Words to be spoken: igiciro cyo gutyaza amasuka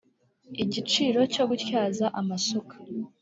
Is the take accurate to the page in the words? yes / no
yes